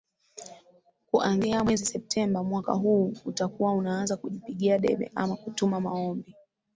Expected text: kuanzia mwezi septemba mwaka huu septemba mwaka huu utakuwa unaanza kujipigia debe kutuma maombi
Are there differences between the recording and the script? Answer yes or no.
yes